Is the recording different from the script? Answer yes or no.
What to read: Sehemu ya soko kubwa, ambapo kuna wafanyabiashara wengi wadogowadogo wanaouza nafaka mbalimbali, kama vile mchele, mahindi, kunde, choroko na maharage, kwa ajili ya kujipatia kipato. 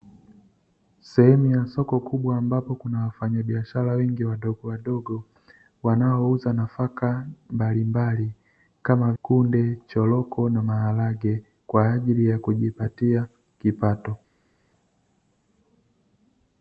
yes